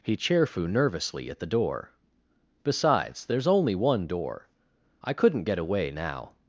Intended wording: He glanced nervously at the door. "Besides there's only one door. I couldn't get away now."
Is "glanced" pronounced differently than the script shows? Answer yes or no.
yes